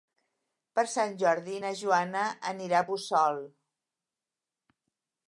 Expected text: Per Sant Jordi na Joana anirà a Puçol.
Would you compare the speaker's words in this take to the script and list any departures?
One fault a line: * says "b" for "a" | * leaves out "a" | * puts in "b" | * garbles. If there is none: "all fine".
all fine